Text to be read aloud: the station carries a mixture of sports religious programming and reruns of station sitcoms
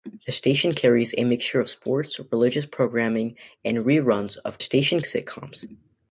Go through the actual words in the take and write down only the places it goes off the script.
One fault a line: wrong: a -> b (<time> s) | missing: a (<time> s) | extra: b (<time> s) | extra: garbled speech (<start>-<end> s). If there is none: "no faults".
no faults